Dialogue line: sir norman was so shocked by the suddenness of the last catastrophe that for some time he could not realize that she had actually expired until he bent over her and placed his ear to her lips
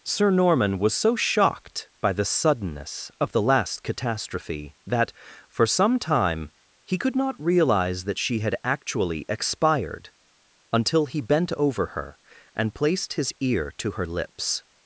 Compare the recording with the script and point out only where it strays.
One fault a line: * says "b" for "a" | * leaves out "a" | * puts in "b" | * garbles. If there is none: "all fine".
all fine